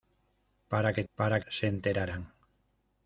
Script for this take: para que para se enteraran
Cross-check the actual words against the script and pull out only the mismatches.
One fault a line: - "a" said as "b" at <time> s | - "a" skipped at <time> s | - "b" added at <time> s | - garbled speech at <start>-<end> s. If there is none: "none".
none